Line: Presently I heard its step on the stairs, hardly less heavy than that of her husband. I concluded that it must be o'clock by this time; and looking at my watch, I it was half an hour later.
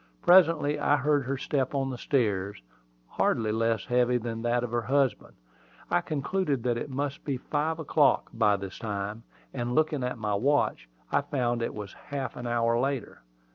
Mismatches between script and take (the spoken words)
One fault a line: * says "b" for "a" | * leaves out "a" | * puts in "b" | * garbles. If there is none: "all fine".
* says "her" for "its"
* puts in "five"
* puts in "found"